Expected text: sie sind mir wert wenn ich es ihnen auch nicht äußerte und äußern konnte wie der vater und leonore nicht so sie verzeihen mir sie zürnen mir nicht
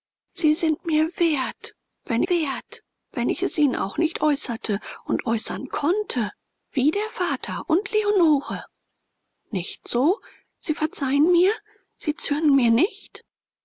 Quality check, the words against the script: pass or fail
fail